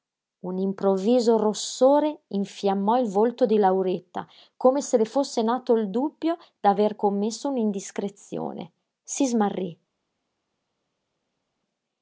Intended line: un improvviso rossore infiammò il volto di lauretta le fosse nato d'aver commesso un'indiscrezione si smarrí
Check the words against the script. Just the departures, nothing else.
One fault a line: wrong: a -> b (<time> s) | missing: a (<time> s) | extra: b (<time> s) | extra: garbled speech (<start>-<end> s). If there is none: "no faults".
extra: come se (4.6 s)
extra: il dubbio (5.8 s)